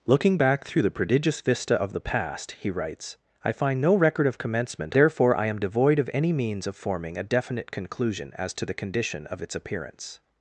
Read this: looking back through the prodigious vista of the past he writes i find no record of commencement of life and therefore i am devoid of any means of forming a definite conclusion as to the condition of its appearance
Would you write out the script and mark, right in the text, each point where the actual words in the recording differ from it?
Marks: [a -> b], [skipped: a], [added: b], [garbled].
looking back through the prodigious vista of the past he writes i find no record of commencement [skipped: of life and] therefore i am devoid of any means of forming a definite conclusion as to the condition of its appearance